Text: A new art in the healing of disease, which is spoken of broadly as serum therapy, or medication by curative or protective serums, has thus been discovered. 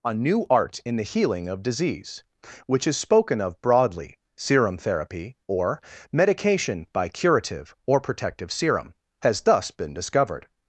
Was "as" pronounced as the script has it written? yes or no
no